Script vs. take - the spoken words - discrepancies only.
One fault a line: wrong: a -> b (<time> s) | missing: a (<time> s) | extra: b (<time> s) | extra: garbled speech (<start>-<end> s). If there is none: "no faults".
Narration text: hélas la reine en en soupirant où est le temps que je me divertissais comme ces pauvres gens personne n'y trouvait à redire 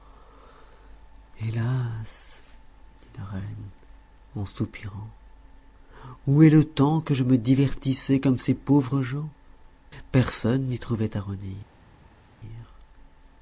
extra: dit (3.0 s)
missing: en (4.5 s)